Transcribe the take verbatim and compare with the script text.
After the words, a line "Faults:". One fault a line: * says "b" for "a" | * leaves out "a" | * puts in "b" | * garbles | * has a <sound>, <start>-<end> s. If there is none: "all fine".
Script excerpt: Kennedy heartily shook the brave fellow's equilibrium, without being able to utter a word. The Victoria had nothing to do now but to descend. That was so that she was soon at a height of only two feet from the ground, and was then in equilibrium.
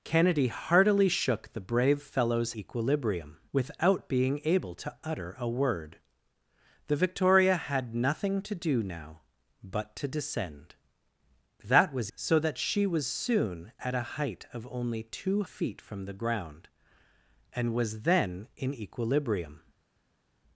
Kennedy heartily shook the brave fellow's equilibrium, without being able to utter a word. The Victoria had nothing to do now but to descend. That was so that she was soon at a height of only two feet from the ground, and was then in equilibrium.
Faults:
all fine